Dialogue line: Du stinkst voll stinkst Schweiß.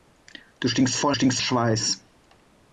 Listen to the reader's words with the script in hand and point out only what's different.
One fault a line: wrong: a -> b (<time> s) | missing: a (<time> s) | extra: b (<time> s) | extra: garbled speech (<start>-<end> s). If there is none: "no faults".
no faults